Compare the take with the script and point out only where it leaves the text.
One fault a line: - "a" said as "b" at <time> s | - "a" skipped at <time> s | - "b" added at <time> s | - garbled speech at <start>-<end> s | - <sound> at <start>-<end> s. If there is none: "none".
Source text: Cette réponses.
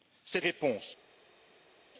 none